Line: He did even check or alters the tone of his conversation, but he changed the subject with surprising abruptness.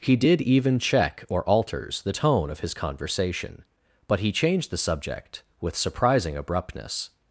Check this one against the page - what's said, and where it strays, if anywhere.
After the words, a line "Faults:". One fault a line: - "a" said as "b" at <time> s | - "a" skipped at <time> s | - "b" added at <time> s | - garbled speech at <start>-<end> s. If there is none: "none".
He did even check or alters the tone of his conversation, but he changed the subject with surprising abruptness.
Faults:
none